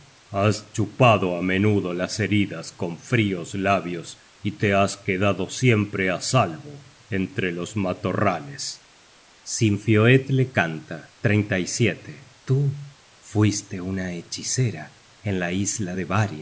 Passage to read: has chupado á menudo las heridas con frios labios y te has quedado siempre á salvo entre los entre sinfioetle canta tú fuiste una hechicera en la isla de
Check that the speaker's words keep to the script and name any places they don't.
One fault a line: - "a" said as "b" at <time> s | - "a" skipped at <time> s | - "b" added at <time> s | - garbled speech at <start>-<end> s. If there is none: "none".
- "entre" said as "matorrales" at 7.7 s